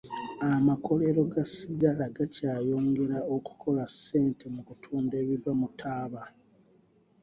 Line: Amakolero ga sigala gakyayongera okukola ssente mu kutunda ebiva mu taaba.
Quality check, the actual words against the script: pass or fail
pass